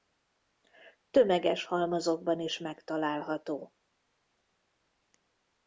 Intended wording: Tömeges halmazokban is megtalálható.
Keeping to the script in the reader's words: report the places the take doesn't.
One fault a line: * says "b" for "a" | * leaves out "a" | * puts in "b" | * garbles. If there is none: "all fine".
all fine